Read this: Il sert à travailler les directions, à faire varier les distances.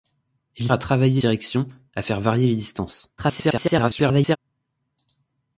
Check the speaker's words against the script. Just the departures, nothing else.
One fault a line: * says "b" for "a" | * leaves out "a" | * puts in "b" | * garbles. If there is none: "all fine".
* leaves out "sert"
* leaves out "les"
* garbles